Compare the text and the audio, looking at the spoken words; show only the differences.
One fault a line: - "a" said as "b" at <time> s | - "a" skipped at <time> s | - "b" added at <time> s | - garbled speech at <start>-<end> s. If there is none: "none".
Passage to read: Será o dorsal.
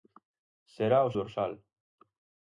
none